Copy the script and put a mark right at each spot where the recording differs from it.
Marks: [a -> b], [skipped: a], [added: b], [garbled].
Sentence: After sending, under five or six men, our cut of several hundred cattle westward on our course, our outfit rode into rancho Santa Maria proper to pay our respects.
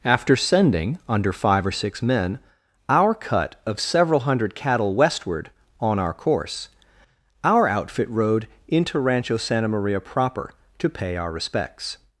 After sending, under five or six men, our cut of several hundred cattle westward on our course, our outfit rode into rancho Santa Maria proper to pay our respects.